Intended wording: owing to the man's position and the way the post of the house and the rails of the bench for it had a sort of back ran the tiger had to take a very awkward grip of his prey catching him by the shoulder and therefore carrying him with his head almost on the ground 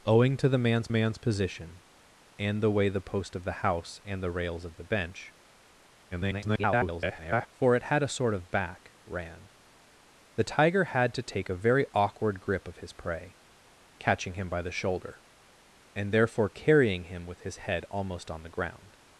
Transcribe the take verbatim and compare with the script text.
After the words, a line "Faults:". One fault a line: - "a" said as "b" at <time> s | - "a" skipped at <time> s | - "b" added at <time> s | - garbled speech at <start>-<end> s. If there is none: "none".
owing to the man's man's position and the way the post of the house and the rails of the bench [garbled] for it had a sort of back ran the tiger had to take a very awkward grip of his prey catching him by the shoulder and therefore carrying him with his head almost on the ground
Faults:
- "man's" added at 0.9 s
- garbled speech at 6.1-7.5 s